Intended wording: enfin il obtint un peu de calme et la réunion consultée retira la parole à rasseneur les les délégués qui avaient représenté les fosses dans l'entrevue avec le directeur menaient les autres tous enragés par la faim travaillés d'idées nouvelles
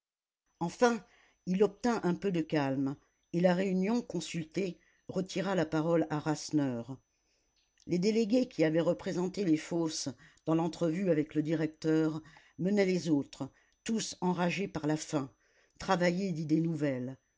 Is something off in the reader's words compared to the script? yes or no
yes